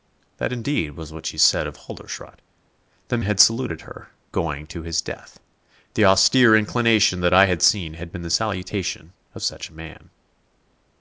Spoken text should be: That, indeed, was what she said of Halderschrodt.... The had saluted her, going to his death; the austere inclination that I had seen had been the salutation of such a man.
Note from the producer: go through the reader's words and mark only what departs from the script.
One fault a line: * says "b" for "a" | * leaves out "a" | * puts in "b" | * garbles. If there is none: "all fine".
all fine